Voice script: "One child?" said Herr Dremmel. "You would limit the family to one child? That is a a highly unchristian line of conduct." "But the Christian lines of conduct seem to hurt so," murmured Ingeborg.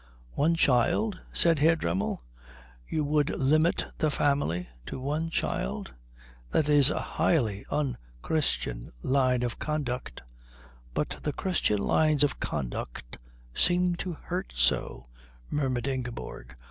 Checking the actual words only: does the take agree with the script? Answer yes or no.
no